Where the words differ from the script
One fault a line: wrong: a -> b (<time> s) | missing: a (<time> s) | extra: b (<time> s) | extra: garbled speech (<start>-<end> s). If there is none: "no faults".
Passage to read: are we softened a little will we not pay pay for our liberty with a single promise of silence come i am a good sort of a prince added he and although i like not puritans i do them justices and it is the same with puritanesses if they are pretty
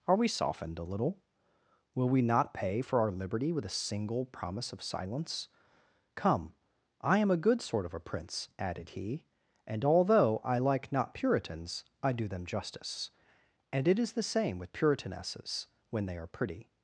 missing: pay (2.8 s)
wrong: justices -> justice (12.5 s)
wrong: if -> when (15.9 s)